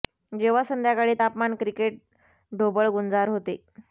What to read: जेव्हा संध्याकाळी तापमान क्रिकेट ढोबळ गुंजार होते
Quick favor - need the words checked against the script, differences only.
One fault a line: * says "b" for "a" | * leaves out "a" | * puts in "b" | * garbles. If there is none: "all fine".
all fine